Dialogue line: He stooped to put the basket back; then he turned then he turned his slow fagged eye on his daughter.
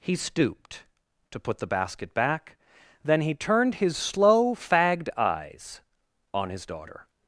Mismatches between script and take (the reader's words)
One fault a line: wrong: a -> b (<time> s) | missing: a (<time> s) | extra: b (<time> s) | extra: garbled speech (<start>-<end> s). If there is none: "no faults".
missing: then he turned (3.8 s)
wrong: eye -> eyes (5.2 s)